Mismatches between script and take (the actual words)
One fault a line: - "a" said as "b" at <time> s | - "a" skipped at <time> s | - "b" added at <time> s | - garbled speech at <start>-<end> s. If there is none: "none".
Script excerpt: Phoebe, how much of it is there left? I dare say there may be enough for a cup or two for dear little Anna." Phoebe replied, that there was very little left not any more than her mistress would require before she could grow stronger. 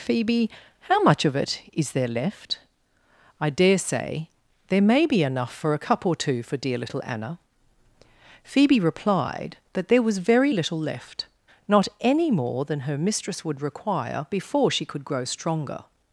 none